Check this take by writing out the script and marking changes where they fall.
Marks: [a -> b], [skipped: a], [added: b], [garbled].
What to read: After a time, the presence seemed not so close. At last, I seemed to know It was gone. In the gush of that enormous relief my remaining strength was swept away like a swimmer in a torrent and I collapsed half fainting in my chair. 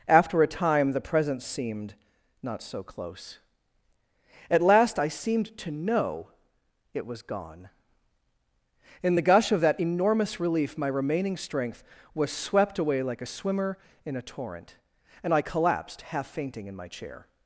After a time, the presence seemed not so close. At last, I seemed to know It was gone. In the gush of that enormous relief my remaining strength was swept away like a swimmer in a torrent and I collapsed half fainting in my chair.